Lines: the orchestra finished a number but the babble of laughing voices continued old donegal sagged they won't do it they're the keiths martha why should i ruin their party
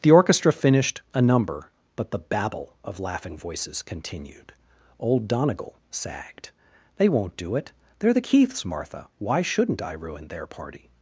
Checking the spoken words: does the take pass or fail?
fail